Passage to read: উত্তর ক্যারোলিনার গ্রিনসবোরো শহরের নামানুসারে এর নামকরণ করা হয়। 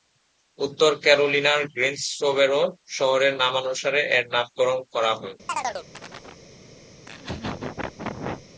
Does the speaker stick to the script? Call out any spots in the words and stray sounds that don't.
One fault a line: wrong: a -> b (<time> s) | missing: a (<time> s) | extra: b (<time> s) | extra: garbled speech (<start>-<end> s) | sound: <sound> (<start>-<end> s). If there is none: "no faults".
sound: chirp (5.5-6.4 s)
sound: laugh (7.0-8.5 s)